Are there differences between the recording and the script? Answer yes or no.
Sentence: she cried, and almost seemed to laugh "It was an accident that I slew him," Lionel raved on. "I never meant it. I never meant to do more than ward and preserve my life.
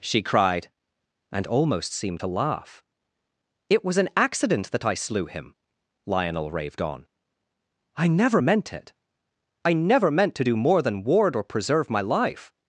yes